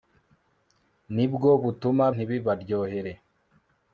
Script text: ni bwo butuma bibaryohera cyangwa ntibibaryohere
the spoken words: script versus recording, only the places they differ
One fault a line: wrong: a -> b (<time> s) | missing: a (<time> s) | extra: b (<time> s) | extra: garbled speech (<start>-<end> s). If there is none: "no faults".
missing: bibaryohera cyangwa (2.0 s)